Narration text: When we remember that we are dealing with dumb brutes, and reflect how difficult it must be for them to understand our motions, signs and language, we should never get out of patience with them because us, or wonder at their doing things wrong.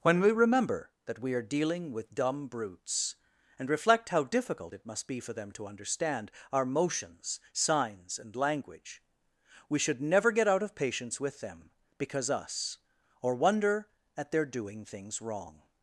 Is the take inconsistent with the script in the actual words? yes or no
no